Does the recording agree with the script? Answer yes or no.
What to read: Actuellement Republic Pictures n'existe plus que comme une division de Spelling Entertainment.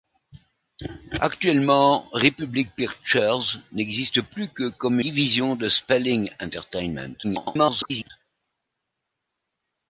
no